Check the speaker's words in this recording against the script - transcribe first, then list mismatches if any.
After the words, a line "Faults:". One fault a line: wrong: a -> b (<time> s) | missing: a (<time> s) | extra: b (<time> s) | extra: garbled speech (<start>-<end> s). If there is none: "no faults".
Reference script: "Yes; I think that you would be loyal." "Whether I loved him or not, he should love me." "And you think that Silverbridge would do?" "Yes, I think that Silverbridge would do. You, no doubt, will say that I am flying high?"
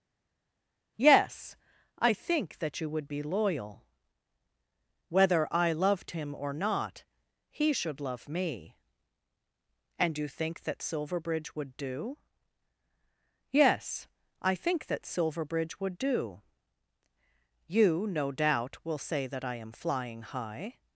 "Yes; I think that you would be loyal." "Whether I loved him or not, he should love me." "And you think that Silverbridge would do?" "Yes, I think that Silverbridge would do. You, no doubt, will say that I am flying high?"
Faults:
no faults